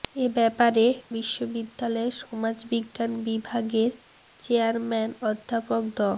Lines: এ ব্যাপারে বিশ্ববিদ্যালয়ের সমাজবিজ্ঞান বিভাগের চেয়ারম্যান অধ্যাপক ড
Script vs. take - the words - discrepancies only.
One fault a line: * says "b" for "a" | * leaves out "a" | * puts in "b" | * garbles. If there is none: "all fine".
all fine